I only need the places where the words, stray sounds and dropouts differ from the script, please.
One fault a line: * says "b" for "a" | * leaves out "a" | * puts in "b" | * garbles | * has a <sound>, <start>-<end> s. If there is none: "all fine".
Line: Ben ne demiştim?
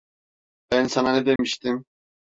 * puts in "sana"
* has a dropout, 1.4-1.4 s